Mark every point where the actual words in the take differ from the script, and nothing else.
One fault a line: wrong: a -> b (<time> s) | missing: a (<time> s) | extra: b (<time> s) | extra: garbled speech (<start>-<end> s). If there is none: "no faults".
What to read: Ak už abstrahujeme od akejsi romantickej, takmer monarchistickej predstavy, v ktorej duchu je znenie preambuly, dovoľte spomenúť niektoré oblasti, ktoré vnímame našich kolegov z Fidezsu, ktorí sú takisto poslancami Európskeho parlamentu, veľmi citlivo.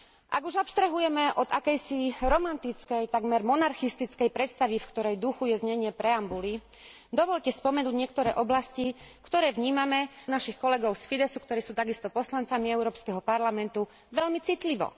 no faults